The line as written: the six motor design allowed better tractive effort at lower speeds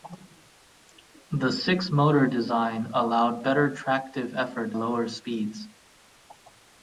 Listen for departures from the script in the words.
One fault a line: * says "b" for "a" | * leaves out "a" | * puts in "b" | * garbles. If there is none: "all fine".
* leaves out "at"